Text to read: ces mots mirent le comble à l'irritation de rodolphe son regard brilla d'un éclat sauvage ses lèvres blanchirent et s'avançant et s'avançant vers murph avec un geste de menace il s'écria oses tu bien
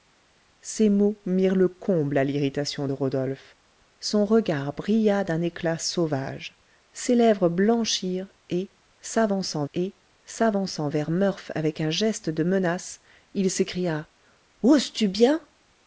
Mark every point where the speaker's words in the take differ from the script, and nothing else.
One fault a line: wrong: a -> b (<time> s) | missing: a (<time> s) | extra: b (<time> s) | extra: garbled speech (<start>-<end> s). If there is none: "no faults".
no faults